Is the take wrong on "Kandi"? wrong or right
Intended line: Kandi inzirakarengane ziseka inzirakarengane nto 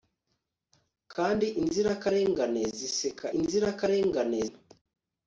right